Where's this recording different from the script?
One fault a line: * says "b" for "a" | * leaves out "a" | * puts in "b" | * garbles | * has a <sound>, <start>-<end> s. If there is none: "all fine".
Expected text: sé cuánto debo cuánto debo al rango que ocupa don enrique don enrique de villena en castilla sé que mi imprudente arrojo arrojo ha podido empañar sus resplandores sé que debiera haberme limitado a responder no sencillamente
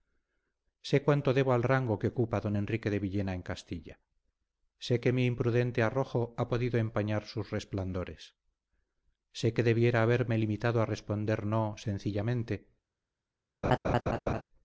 * leaves out "cuánto debo"
* leaves out "don enrique"
* leaves out "arrojo"
* has a laugh, 13.6-14.4 s